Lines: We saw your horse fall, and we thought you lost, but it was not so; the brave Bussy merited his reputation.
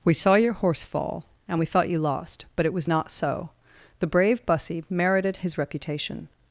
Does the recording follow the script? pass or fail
pass